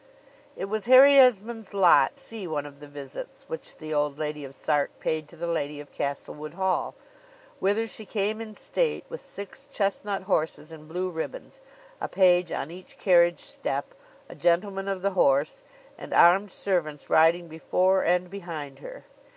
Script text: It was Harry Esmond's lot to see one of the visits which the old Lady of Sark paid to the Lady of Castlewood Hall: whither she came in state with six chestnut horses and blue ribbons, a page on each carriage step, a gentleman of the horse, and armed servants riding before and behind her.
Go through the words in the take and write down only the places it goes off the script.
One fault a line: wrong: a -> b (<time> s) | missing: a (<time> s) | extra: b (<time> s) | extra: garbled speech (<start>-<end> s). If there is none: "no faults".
missing: to (2.2 s)